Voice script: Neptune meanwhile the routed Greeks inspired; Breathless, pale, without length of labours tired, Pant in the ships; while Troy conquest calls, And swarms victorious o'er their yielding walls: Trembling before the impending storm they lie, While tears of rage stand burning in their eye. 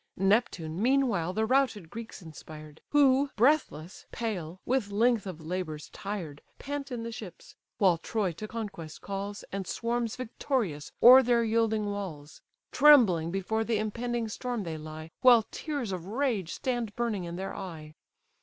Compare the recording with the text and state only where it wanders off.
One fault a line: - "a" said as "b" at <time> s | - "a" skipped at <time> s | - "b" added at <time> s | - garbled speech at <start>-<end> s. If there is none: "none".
- "Who" added at 2.9 s
- "without" said as "with" at 4.7 s
- "to" added at 8.3 s